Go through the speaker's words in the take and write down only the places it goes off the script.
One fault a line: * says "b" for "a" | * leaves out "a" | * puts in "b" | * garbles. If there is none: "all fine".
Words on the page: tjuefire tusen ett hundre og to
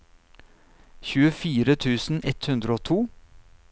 all fine